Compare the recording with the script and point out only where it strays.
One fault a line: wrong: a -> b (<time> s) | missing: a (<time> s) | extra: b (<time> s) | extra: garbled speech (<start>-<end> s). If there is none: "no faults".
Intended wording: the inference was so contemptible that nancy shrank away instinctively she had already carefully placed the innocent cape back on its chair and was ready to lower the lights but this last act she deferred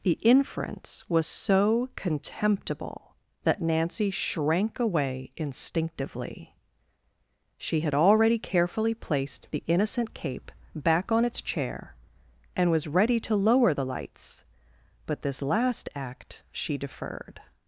no faults